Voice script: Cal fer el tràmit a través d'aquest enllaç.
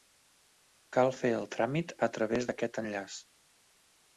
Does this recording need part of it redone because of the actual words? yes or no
no